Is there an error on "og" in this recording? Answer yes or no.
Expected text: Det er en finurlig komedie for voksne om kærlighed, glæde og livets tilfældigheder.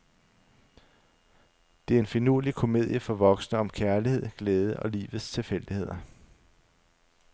no